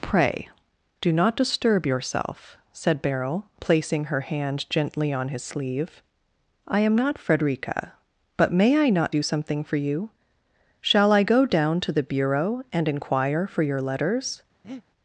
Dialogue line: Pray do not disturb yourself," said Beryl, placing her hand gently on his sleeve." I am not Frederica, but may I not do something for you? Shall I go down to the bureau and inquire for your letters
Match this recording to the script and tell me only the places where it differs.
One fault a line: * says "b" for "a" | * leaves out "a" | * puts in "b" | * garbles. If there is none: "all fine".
all fine